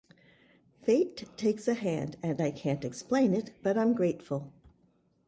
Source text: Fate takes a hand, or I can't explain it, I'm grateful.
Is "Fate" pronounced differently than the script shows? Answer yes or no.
no